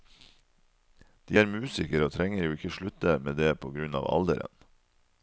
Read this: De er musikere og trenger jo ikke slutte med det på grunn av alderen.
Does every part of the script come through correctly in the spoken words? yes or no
yes